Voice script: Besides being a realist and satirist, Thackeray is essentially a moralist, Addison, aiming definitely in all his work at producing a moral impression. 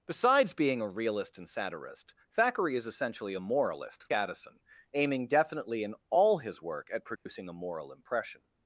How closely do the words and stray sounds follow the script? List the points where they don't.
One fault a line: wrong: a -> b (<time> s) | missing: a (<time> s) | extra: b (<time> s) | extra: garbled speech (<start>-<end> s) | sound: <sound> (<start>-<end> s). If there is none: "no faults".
sound: dropout (7.2-7.3 s)